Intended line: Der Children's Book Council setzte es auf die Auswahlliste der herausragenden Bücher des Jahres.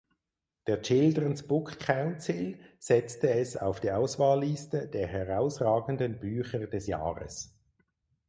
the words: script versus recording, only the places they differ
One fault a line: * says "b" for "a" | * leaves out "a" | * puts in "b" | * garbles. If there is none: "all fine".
all fine